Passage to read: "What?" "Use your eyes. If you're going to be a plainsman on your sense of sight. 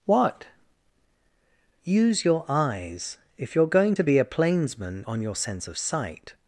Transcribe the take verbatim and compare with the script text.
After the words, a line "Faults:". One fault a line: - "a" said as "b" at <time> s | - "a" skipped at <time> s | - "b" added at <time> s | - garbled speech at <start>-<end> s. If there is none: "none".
"What?" "Use your eyes. If you're going to be a plainsman on your sense of sight.
Faults:
none